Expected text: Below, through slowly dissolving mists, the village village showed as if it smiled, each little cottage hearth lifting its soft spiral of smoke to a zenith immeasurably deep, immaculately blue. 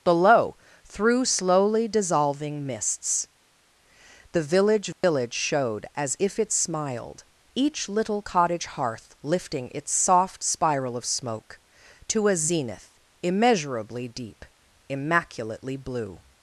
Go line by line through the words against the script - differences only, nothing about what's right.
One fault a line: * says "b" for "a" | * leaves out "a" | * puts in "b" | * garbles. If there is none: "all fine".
all fine